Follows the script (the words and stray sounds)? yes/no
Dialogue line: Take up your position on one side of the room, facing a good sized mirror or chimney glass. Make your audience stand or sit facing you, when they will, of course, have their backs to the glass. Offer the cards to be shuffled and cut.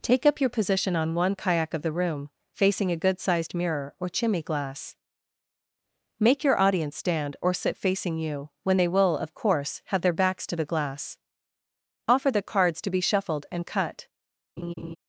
no